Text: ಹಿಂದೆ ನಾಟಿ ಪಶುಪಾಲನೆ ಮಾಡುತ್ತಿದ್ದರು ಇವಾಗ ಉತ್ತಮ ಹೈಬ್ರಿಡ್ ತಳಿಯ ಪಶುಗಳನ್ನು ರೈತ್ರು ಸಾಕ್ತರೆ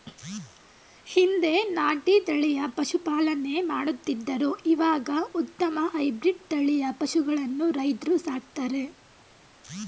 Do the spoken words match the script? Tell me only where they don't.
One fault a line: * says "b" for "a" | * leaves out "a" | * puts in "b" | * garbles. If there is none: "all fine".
* puts in "ತಳಿಯ"